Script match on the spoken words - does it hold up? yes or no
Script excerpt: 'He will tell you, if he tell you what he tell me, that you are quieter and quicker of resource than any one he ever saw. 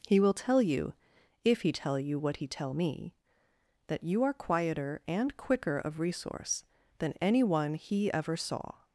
yes